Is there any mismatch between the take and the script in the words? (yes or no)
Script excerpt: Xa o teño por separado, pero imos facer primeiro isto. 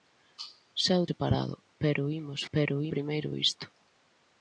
yes